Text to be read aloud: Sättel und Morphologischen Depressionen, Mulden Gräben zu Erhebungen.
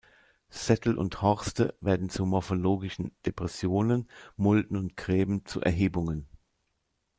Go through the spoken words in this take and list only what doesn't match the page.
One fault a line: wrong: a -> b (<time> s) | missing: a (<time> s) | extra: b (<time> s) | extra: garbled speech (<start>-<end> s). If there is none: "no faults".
extra: Horste werden zu (1.2 s)
extra: und (4.8 s)